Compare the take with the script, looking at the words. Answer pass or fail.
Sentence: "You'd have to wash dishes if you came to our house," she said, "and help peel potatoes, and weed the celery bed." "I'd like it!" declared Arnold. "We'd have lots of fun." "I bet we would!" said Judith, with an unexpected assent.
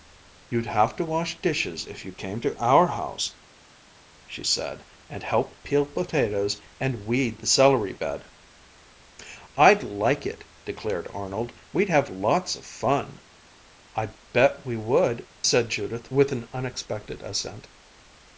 pass